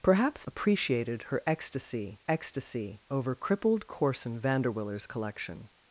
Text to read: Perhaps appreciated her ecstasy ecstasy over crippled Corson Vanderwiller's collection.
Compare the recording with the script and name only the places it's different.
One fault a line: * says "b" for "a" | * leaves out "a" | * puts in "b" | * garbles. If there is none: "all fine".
all fine